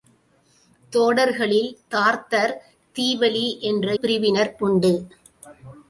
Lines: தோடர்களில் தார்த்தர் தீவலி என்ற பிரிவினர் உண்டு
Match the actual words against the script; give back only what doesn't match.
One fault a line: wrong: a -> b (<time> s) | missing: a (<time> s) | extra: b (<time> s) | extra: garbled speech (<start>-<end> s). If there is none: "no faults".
no faults